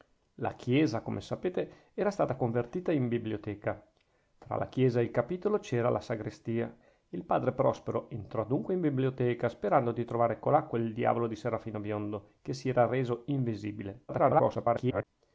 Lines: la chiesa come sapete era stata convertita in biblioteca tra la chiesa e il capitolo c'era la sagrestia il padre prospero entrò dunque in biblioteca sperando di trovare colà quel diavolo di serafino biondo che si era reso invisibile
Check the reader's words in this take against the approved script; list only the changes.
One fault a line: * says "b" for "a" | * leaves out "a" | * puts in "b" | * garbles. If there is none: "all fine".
* garbles